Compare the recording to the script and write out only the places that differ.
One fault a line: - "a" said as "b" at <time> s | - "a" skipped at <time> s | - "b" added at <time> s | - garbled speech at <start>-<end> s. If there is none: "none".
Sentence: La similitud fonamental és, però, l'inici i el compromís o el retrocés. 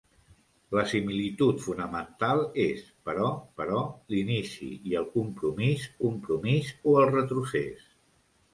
- "però" added at 3.6 s
- "compromís" added at 6.0 s